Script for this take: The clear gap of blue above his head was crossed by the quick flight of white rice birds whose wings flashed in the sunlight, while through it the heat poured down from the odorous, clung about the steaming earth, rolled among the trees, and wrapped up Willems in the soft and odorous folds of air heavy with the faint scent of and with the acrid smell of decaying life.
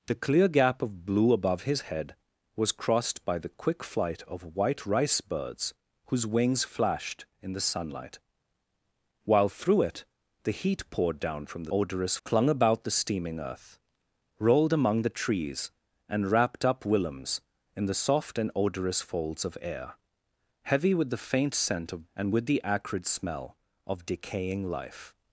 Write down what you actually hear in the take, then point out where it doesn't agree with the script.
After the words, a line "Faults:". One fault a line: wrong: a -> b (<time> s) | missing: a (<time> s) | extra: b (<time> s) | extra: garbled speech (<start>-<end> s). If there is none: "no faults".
The clear gap of blue above his head was crossed by the quick flight of white rice birds whose wings flashed in the sunlight, while through it the heat poured down from the odorous, clung about the steaming earth, rolled among the trees, and wrapped up Willems in the soft and odorous folds of air heavy with the faint scent of and with the acrid smell of decaying life.
Faults:
no faults